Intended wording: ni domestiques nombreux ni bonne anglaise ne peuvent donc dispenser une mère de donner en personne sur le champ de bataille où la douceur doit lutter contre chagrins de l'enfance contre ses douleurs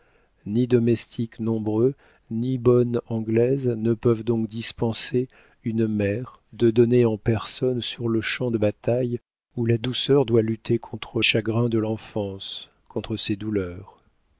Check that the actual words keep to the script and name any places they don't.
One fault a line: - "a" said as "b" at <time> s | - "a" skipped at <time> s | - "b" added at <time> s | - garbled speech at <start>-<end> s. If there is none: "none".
none